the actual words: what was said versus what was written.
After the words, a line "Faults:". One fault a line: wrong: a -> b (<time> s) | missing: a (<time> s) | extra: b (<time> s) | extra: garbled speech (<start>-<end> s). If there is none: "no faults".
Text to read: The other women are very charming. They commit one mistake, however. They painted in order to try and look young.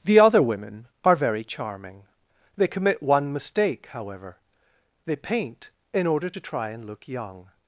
The other women are very charming. They commit one mistake, however. They paint in order to try and look young.
Faults:
wrong: painted -> paint (5.2 s)